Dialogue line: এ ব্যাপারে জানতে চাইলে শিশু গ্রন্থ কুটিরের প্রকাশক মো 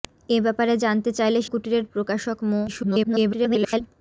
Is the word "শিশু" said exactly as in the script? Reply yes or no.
no